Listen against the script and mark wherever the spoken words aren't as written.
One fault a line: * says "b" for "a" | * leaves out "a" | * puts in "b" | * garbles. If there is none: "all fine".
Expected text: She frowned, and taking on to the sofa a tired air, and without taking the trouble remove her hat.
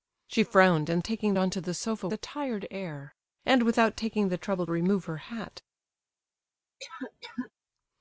all fine